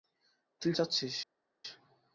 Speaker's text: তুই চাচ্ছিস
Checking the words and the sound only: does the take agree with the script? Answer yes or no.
yes